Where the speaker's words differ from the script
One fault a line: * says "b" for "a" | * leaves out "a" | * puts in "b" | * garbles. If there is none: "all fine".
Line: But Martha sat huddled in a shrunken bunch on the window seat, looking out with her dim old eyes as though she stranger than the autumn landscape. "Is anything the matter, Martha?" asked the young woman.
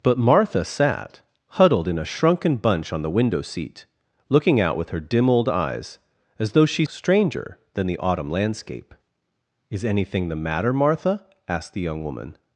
all fine